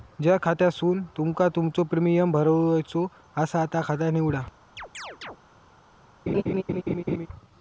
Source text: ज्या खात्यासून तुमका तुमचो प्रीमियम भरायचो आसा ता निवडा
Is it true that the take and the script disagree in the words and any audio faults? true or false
true